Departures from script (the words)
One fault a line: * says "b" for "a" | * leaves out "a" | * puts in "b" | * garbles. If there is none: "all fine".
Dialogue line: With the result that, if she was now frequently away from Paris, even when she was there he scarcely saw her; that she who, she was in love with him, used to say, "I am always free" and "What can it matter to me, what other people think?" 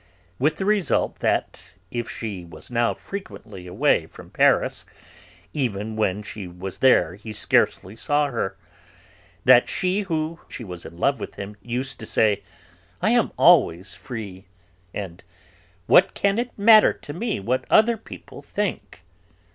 all fine